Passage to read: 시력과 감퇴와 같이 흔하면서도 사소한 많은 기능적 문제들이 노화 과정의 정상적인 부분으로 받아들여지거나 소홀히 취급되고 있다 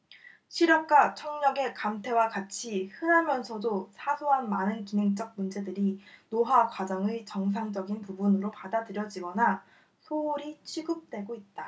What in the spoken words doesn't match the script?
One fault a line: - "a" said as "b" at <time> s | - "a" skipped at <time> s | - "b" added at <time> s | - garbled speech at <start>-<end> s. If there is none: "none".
- "청력의" added at 1.1 s